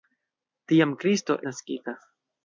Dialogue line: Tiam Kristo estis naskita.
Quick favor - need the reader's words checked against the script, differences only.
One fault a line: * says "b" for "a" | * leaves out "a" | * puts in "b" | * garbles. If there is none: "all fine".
* leaves out "estis"